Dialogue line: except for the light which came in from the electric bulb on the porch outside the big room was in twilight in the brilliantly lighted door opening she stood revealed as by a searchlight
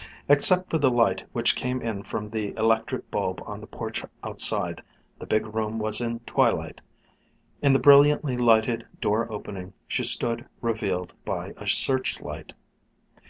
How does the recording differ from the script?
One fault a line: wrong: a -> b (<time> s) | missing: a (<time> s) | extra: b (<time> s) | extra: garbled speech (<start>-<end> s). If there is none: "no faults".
missing: as (11.1 s)